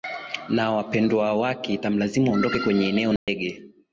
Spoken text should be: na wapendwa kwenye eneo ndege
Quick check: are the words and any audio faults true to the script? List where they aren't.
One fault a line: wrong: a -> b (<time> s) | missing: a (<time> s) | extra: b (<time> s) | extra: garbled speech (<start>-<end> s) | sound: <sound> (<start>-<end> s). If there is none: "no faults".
extra: wake itamlazimu aondoke (1.3 s)
sound: dropout (3.2-3.3 s)